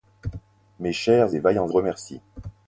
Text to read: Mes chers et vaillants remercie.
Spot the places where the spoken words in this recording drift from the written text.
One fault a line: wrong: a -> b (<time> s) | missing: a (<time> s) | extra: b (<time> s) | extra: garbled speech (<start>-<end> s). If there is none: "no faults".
no faults